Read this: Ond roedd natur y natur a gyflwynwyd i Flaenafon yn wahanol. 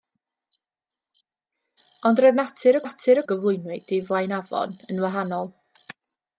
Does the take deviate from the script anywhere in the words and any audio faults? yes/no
no